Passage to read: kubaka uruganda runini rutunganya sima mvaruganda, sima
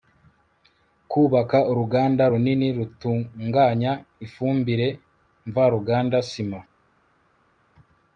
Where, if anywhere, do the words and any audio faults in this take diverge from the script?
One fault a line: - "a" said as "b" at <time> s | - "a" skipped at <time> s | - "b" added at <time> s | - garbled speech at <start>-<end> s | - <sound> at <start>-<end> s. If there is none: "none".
- "sima" said as "ifumbire" at 4.2 s